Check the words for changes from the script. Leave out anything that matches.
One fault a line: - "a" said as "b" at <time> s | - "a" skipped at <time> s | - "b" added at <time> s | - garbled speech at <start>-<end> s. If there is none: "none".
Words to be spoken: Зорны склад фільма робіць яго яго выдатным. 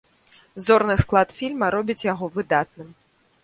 - "яго" skipped at 2.3 s